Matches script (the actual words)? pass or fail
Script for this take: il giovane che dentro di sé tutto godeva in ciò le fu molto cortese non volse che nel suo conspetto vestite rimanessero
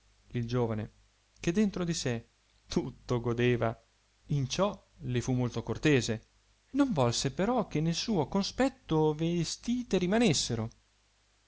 fail